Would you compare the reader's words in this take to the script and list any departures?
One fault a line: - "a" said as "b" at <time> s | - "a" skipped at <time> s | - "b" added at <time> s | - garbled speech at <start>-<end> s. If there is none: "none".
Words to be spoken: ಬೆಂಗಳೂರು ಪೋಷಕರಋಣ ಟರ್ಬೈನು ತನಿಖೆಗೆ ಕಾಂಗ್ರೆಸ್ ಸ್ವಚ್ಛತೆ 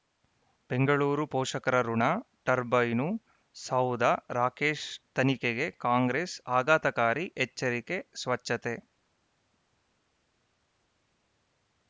- "ಸೌಧ ರಾಕೇಶ್" added at 3.5 s
- "ಆಘಾತಕಾರಿ ಎಚ್ಚರಿಕೆ" added at 6.6 s